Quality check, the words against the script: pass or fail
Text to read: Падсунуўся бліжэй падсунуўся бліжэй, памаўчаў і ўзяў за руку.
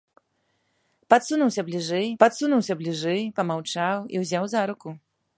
pass